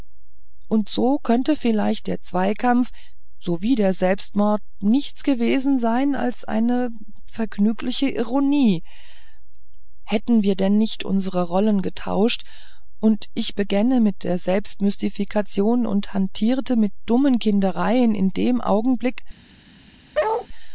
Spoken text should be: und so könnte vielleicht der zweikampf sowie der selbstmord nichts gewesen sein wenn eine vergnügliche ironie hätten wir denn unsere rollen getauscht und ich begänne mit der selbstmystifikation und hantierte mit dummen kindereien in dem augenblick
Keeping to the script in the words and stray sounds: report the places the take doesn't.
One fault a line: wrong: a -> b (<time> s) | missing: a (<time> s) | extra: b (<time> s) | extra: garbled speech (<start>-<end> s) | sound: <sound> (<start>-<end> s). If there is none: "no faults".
wrong: wenn -> als (6.2 s)
extra: nicht (10.8 s)
sound: bark (20.1-20.5 s)